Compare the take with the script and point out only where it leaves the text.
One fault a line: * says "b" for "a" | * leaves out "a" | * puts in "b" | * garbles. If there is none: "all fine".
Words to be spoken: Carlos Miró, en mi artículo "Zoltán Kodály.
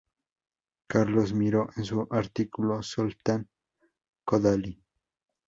* says "su" for "mi"